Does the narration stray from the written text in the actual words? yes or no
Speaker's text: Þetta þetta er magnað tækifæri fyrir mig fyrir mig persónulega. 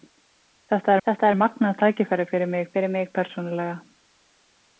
no